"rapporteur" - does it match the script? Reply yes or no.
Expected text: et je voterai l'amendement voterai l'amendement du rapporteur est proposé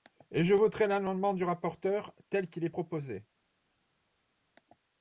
no